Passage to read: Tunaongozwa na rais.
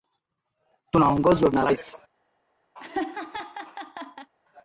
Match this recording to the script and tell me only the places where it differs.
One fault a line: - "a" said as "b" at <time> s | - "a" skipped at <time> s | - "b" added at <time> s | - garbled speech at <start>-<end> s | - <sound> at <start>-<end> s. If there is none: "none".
- laugh at 2.7-4.3 s